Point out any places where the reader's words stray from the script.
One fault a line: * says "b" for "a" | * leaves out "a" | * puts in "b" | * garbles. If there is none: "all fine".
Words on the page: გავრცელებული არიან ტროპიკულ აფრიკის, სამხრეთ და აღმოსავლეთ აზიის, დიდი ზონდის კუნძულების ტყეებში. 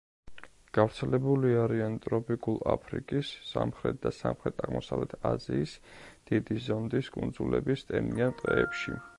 * puts in "სამხრეთ"
* puts in "ტენიან"